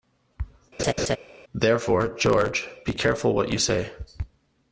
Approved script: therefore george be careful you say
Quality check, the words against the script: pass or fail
fail